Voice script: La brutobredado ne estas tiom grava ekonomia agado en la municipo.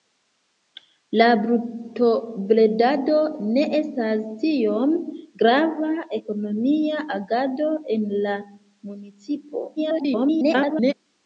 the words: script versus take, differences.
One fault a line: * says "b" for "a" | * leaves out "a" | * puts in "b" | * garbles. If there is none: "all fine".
* garbles